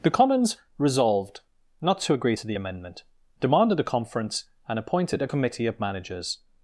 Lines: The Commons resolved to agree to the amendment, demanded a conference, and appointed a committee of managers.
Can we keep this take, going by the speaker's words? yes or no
no